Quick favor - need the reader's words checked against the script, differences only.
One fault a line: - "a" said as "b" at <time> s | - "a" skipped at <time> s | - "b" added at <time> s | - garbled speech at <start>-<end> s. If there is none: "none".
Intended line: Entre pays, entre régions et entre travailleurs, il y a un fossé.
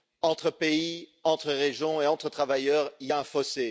none